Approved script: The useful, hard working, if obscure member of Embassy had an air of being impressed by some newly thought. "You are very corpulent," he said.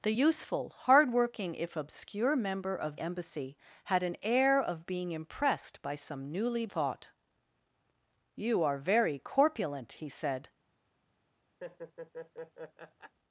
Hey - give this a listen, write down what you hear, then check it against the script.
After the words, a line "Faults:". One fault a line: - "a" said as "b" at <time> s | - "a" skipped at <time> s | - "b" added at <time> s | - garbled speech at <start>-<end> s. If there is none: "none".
The useful, hard working, if obscure member of Embassy had an air of being impressed by some newly thought. "You are very corpulent," he said.
Faults:
none